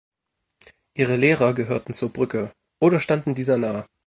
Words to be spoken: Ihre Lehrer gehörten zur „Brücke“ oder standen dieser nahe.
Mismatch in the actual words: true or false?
false